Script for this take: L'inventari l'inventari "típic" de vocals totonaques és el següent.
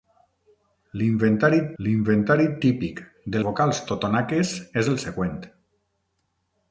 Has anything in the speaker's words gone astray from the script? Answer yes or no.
no